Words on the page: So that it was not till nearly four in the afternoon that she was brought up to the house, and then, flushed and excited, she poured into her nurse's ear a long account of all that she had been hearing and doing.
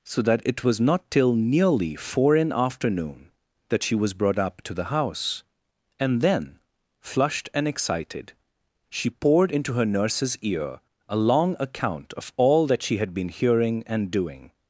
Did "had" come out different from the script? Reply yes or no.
no